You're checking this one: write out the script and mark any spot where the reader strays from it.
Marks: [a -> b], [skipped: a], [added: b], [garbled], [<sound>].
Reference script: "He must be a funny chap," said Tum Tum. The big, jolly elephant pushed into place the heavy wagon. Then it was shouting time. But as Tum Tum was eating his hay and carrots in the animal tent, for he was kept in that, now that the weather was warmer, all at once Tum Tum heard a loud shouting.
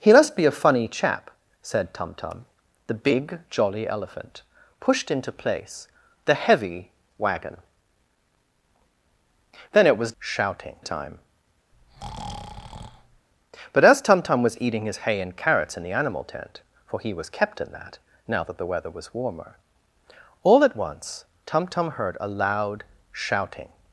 "He must be a funny chap," said Tum Tum. The big, jolly elephant pushed into place the heavy wagon. Then it was shouting time. [breath] But as Tum Tum was eating his hay and carrots in the animal tent, for he was kept in that, now that the weather was warmer, all at once Tum Tum heard a loud shouting.